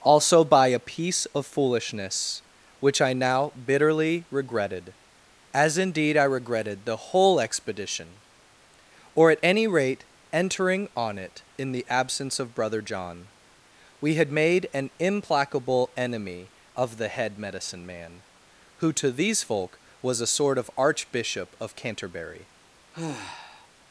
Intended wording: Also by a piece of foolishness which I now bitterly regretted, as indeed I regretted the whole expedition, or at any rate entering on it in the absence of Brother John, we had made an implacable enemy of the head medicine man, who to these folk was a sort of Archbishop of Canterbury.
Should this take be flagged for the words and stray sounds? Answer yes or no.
yes